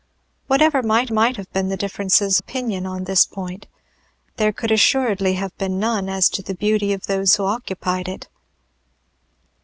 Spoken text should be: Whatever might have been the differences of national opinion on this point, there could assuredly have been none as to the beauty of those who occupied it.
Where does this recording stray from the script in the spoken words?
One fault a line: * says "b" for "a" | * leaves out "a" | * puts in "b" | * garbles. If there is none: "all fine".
* puts in "might"
* leaves out "of national"